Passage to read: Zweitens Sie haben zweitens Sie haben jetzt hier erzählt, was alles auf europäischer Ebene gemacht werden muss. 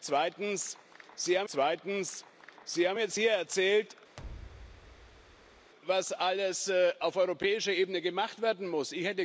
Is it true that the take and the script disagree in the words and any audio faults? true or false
true